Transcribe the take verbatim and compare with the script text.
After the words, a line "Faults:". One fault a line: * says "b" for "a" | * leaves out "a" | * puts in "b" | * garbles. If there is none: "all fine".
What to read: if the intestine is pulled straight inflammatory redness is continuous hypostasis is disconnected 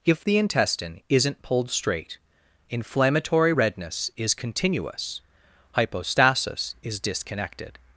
if the intestine isn't pulled straight inflammatory redness is continuous hypostasis is disconnected
Faults:
* says "isn't" for "is"